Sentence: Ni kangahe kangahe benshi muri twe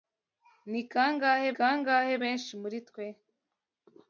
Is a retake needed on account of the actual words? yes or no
no